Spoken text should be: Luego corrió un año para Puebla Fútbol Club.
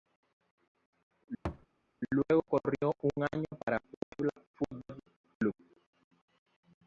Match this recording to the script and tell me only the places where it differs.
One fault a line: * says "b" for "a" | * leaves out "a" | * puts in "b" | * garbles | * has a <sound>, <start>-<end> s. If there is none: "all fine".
* has a thud, 1.5-1.7 s
* has a dropout, 4.0-4.1 s